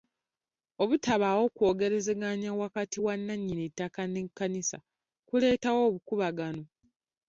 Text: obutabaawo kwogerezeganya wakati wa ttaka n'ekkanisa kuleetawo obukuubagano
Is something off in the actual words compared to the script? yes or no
yes